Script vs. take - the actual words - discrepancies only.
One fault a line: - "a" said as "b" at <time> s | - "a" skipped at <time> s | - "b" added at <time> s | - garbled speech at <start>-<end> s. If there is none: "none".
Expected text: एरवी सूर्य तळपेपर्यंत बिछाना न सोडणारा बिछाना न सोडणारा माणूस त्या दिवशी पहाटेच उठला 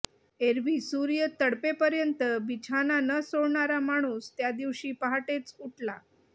- "बिछाना न सोडणारा" skipped at 3.8 s